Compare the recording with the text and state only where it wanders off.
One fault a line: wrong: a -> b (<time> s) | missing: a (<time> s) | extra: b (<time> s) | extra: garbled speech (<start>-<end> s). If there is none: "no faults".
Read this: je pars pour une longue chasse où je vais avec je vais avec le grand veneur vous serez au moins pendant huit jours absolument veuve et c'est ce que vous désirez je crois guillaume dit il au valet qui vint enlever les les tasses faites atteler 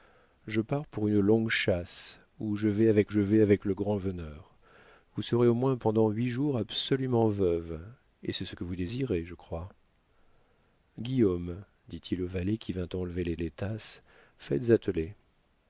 no faults